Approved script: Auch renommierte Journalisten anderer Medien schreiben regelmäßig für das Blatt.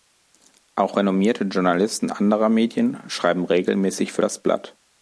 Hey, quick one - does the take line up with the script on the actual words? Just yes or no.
yes